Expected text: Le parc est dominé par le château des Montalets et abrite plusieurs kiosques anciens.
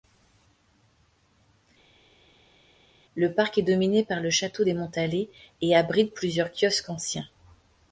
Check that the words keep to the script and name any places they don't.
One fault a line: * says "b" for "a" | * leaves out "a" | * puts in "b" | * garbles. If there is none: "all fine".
all fine